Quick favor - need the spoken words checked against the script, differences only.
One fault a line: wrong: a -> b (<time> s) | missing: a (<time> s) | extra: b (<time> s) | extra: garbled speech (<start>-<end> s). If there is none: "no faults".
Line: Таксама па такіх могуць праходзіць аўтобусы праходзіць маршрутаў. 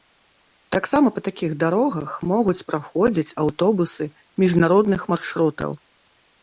extra: дарогах (1.7 s)
wrong: праходзіць -> міжнародных (4.5 s)